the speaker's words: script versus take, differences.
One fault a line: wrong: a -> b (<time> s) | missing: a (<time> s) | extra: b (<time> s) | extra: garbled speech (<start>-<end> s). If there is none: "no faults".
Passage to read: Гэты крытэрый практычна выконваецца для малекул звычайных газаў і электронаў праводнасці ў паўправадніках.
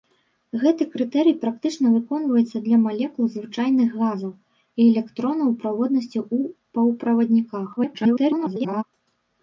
extra: garbled speech (7.8-8.8 s)